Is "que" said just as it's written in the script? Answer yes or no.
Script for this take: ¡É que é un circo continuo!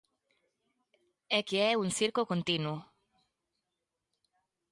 yes